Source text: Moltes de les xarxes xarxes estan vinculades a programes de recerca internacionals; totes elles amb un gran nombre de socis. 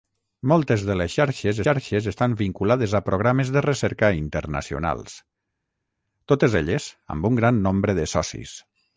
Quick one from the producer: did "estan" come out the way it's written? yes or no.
yes